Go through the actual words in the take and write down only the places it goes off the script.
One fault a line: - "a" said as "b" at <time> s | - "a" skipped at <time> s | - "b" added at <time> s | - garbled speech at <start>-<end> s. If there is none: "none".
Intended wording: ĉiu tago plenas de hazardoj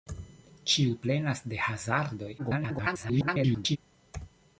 - "tago" skipped at 0.9 s
- garbled speech at 2.4-3.8 s